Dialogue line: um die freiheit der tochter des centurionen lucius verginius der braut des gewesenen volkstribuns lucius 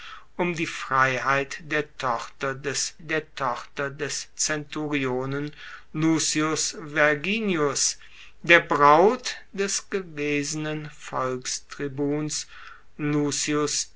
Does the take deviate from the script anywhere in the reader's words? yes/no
yes